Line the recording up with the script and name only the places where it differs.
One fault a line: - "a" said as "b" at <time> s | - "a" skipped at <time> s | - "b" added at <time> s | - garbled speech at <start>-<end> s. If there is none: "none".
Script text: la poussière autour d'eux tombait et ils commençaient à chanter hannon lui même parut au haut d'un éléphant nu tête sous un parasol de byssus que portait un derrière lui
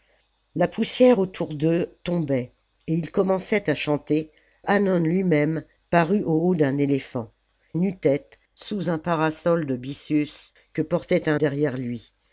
none